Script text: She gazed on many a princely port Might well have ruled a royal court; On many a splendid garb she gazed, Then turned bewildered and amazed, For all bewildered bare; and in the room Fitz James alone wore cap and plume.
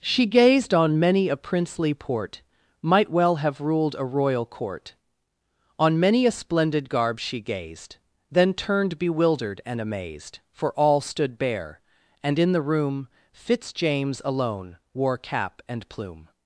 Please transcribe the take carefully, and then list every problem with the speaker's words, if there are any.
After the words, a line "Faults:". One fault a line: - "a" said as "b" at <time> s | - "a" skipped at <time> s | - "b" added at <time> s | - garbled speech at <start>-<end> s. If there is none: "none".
She gazed on many a princely port Might well have ruled a royal court; On many a splendid garb she gazed, Then turned bewildered and amazed, For all stood bare; and in the room Fitz James alone wore cap and plume.
Faults:
- "bewildered" said as "stood" at 11.0 s